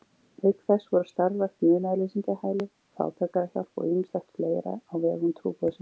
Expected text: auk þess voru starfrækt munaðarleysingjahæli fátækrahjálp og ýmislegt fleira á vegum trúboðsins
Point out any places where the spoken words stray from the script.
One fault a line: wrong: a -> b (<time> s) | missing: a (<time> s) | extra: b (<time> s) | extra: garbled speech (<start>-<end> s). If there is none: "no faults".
no faults